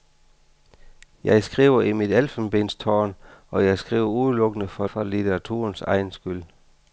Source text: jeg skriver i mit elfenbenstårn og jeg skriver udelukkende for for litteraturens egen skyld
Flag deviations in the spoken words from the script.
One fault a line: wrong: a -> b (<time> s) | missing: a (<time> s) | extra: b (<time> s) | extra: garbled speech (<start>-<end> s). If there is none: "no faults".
no faults